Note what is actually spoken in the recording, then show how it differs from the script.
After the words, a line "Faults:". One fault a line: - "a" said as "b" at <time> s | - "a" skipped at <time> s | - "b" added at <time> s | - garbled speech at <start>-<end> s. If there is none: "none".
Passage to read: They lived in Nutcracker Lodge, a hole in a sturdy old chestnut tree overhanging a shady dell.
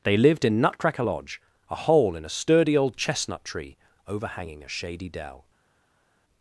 They lived in Nutcracker Lodge, a hole in a sturdy old chestnut tree overhanging a shady dell.
Faults:
none